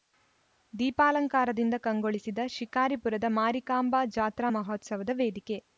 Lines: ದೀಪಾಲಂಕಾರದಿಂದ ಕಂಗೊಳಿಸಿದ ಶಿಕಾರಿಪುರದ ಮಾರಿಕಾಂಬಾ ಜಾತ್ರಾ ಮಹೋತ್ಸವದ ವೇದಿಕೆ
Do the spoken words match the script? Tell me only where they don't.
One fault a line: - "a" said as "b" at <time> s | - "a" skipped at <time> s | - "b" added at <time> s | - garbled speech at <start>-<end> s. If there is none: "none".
none